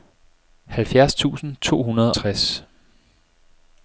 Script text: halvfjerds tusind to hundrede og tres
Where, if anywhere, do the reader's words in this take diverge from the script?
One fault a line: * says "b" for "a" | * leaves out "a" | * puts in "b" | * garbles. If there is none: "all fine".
* leaves out "og"